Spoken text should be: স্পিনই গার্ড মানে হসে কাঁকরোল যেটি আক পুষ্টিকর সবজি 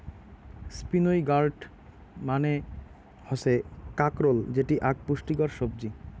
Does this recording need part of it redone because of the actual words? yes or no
no